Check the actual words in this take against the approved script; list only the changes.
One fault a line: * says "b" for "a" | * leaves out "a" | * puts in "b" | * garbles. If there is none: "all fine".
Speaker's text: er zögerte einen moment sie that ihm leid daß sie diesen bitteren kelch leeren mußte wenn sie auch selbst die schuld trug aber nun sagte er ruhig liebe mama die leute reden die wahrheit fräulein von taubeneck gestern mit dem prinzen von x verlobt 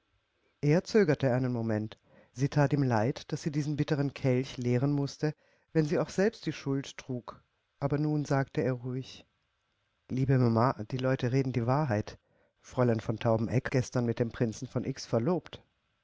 all fine